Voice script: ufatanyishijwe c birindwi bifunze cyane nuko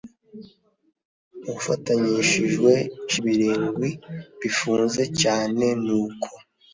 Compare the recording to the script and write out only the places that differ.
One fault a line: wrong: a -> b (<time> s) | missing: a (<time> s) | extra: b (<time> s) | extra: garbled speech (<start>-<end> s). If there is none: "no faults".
no faults